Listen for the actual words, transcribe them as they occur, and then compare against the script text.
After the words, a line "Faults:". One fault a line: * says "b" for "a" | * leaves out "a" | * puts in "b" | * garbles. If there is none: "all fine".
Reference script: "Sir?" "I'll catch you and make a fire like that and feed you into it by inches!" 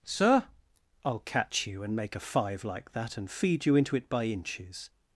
"Sir?" "I'll catch you and make a five like that and feed you into it by inches!"
Faults:
* says "five" for "fire"